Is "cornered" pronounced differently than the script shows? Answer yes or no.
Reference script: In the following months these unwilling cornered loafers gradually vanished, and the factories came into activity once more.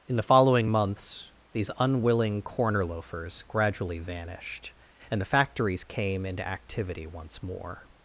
yes